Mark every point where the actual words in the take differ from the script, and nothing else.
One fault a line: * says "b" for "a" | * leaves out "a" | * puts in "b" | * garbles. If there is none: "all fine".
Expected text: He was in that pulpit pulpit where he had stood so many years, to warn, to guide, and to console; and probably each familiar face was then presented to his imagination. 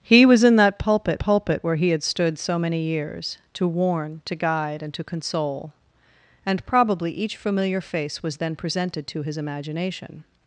all fine